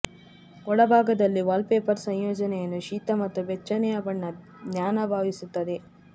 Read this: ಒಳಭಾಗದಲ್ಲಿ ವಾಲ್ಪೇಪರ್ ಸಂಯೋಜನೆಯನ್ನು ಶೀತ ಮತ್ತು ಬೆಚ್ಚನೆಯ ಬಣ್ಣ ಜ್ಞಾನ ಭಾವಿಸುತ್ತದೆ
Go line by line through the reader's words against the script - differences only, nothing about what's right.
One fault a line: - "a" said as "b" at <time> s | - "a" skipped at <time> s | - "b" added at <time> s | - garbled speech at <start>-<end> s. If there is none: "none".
none